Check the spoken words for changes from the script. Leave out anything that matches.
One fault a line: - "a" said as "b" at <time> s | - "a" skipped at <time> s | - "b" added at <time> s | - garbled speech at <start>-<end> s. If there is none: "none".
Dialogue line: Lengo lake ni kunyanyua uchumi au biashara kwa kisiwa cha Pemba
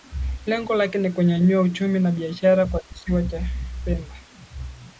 - "au" said as "na" at 2.0 s